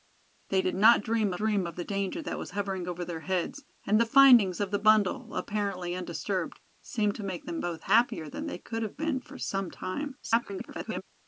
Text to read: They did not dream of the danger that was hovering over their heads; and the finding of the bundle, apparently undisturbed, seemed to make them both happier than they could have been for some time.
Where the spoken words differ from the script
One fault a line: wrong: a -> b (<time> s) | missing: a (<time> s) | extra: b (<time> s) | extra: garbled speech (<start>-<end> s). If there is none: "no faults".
extra: dream (1.4 s)
extra: garbled speech (10.2-11.0 s)